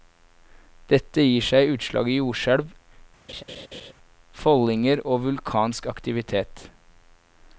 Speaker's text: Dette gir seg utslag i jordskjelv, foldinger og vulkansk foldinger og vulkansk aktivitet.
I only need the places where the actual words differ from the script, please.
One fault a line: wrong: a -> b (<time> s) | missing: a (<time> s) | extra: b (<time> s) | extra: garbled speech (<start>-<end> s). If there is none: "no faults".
missing: foldinger og vulkansk (5.9 s)